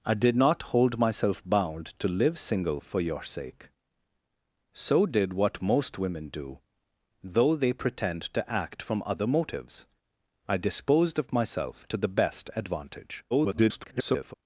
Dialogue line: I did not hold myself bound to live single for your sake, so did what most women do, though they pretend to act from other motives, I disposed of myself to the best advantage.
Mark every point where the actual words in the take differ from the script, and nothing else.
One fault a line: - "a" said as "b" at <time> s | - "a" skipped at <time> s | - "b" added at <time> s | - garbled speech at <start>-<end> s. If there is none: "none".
- garbled speech at 13.3-14.3 s